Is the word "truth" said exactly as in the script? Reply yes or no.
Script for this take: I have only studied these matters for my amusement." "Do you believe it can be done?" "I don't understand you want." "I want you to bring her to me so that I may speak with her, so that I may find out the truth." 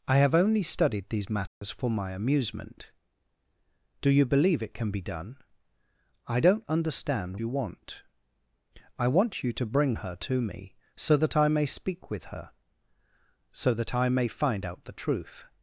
yes